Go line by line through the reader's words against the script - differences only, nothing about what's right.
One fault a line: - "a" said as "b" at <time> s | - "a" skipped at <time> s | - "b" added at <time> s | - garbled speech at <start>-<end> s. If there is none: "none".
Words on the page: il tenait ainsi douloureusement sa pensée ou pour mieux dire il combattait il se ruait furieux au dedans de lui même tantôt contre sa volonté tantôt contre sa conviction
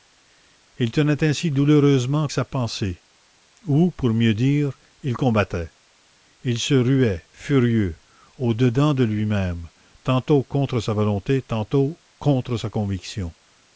none